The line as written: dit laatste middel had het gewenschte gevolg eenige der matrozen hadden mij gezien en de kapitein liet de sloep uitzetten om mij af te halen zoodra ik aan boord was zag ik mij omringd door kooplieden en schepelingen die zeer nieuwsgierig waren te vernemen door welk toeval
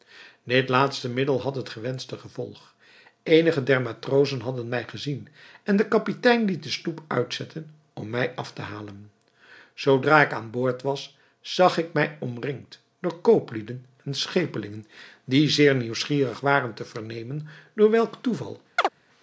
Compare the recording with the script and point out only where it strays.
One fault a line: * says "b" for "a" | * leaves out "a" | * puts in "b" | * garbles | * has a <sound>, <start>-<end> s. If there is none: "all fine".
* has a chirp, 18.8-18.9 s